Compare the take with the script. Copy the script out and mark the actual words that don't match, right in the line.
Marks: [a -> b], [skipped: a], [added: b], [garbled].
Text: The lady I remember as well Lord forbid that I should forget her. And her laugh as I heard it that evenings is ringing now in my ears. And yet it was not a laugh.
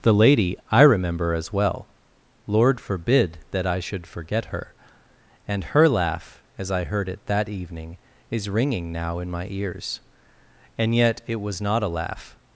The lady I remember as well Lord forbid that I should forget her. And her laugh as I heard it that [evenings -> evening] is ringing now in my ears. And yet it was not a laugh.